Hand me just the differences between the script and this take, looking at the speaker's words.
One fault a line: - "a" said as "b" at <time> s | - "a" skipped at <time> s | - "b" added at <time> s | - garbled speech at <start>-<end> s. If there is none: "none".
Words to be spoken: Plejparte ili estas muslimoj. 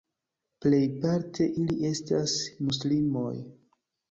none